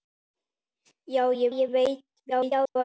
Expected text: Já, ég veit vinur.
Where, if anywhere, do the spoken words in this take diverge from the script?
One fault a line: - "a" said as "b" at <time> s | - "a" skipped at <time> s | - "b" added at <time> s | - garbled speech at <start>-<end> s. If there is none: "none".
- "ég" added at 1.5 s
- garbled speech at 2.3-2.8 s